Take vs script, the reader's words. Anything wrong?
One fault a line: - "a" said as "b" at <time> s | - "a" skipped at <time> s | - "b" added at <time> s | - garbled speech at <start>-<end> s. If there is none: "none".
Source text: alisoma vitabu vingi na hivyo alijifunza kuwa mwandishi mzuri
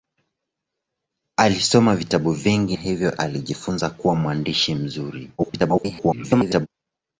- "na" skipped at 2.8 s
- garbled speech at 5.4-6.7 s